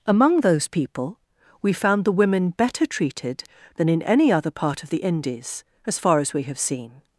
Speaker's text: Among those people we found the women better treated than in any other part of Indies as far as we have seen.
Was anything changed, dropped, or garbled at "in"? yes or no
no